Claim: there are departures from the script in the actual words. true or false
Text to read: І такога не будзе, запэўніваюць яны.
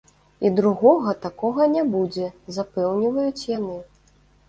true